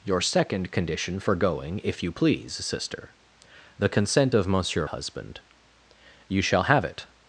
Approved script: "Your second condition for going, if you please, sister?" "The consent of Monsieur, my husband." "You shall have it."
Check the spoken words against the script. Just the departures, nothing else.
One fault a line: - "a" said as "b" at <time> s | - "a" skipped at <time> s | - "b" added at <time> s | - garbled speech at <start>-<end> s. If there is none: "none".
- "my" skipped at 4.9 s